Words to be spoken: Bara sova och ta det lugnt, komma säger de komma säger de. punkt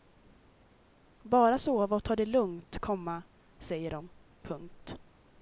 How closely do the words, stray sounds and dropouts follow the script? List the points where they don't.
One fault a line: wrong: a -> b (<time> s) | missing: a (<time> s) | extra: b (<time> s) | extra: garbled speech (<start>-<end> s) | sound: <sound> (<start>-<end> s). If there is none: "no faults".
missing: komma säger de (4.1 s)